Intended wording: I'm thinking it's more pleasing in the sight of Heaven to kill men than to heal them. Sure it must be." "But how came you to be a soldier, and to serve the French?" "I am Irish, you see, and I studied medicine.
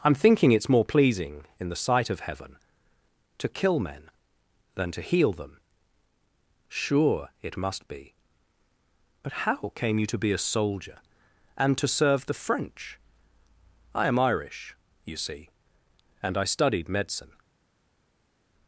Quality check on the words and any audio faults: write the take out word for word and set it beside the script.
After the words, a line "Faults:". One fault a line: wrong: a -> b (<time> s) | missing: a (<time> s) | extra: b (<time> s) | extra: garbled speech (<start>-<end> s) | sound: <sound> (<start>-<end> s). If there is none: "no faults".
I'm thinking it's more pleasing in the sight of Heaven to kill men than to heal them. Sure it must be." "But how came you to be a soldier, and to serve the French?" "I am Irish, you see, and I studied medicine.
Faults:
no faults